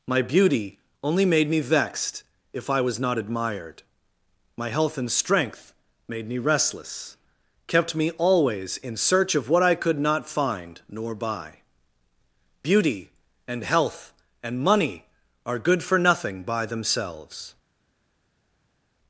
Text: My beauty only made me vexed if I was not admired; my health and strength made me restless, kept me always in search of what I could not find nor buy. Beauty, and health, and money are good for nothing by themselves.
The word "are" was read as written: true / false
true